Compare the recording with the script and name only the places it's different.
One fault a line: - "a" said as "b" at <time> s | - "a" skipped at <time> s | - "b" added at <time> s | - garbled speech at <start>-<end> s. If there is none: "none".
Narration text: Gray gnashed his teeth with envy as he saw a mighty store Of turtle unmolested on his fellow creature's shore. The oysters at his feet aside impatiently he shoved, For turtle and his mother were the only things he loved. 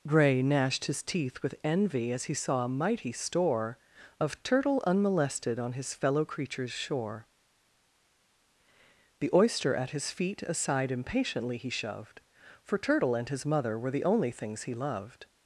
- "oysters" said as "oyster" at 9.3 s